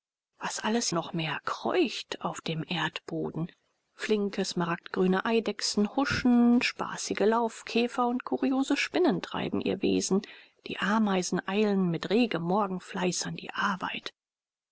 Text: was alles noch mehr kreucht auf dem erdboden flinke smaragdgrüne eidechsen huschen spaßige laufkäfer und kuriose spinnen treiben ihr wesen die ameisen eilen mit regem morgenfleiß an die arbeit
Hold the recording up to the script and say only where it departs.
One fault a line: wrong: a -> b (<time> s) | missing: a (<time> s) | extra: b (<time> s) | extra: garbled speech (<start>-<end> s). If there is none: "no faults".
no faults